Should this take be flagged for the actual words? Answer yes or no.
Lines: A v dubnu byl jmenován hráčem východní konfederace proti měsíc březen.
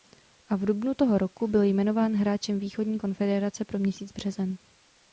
yes